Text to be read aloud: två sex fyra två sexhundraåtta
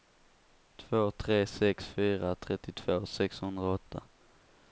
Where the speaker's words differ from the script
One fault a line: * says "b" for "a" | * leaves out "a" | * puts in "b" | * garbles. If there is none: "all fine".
* puts in "tre"
* says "trettiotvå" for "två"